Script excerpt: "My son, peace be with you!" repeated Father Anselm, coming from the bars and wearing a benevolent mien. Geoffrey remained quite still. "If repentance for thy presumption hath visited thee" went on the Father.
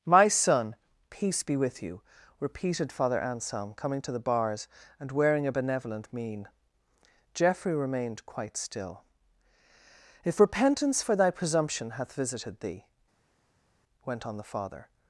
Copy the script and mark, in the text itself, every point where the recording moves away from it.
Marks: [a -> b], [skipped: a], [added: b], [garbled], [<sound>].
"My son, peace be with you!" repeated Father Anselm, coming [from -> to] the bars and wearing a benevolent mien. Geoffrey remained quite still. "If repentance for thy presumption hath visited thee" went on the Father.